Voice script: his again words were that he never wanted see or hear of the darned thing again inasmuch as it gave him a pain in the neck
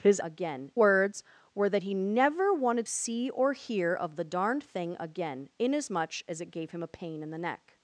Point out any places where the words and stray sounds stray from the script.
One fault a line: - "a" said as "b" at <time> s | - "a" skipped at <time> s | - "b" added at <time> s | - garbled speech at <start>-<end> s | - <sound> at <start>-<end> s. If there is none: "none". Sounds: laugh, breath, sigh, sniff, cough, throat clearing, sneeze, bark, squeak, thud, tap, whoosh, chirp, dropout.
none